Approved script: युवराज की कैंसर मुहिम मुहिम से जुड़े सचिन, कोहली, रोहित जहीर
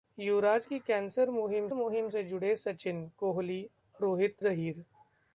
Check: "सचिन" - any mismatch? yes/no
no